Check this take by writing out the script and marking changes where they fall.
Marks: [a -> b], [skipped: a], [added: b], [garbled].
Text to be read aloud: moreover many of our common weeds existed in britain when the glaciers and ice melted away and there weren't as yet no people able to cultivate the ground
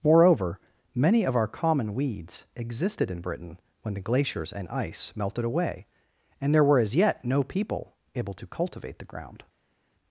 moreover many of our common weeds existed in britain when the glaciers and ice melted away and there [weren't -> were] as yet no people able to cultivate the ground